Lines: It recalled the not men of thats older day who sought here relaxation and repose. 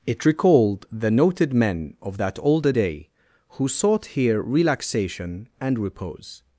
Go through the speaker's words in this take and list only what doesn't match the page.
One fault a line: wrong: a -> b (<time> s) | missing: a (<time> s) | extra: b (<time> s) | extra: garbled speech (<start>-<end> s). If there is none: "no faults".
wrong: not -> noted (1.1 s)
wrong: thats -> that (2.2 s)